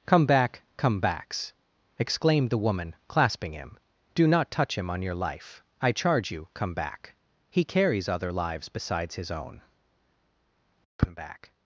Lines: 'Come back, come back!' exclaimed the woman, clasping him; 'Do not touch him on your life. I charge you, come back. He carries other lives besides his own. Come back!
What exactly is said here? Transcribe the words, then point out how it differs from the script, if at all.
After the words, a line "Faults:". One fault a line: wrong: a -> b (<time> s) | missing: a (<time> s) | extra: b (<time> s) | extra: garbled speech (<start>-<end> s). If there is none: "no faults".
'Come back, come backs!' exclaimed the woman, clasping him; 'Do not touch him on your life. I charge you, come back. He carries other lives besides his own. Come back!
Faults:
wrong: back -> backs (1.0 s)